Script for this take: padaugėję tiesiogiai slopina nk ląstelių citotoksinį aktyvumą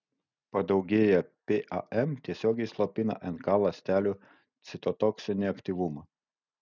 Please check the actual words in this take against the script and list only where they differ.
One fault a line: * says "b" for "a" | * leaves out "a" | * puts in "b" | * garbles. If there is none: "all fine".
* puts in "pam"